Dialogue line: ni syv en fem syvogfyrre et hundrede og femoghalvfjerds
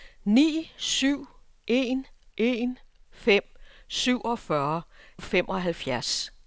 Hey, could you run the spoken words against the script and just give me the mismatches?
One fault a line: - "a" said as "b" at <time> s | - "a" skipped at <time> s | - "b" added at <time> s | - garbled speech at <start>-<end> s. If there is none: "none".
- "en" added at 2.4 s
- "et hundrede" skipped at 4.8 s